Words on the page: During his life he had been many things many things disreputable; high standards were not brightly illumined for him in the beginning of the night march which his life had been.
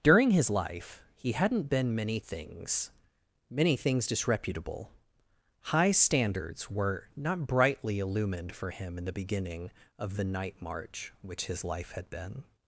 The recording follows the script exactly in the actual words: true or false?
false